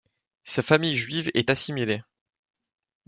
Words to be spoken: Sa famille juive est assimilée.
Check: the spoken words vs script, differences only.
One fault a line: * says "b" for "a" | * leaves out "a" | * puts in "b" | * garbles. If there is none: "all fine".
all fine